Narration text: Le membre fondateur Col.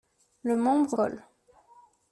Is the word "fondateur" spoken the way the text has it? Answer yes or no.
no